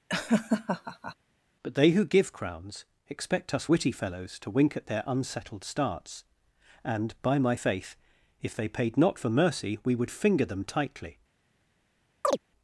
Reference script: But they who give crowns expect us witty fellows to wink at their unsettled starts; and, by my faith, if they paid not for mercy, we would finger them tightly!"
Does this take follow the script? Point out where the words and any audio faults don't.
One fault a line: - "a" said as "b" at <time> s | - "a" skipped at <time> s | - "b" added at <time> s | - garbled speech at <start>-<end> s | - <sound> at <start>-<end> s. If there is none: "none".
- laugh at 0.1-1.2 s
- chirp at 12.2-12.4 s